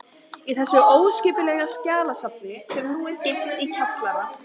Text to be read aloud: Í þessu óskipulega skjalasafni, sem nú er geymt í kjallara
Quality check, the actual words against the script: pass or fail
pass